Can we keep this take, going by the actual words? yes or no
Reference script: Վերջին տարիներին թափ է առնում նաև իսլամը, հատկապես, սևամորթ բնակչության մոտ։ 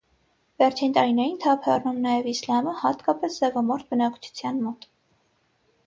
yes